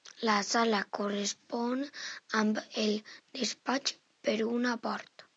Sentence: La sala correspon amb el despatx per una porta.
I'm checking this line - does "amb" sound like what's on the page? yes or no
yes